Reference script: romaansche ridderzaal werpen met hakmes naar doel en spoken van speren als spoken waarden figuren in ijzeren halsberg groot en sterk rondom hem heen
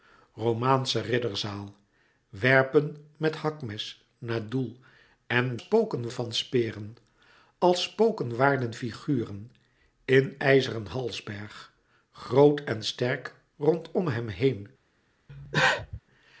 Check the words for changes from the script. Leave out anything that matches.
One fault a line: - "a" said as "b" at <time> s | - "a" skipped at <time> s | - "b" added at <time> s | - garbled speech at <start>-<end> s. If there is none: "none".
none